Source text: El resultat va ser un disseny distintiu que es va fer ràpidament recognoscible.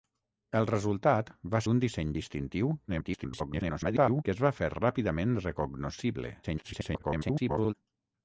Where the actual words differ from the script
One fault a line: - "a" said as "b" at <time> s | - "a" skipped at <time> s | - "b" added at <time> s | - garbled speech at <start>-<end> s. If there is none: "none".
- "ser" skipped at 1.6 s
- garbled speech at 2.9-4.2 s
- garbled speech at 6.4-7.7 s